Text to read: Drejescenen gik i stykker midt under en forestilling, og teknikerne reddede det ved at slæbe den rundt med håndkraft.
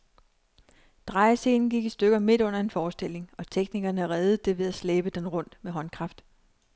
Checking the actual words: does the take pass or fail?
pass